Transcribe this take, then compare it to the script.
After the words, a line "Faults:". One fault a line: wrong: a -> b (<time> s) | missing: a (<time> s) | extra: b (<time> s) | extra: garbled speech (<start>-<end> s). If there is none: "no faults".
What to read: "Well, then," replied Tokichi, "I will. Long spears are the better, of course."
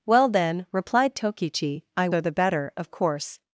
"Well, then," replied Tokichi, "I are the better, of course."
Faults:
missing: will Long spears (2.1 s)